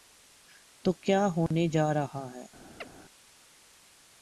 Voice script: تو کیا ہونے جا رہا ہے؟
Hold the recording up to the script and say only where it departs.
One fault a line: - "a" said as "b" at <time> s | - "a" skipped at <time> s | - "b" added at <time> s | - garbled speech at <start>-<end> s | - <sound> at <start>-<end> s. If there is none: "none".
- dropout at 1.5-1.5 s
- chirp at 2.8-2.9 s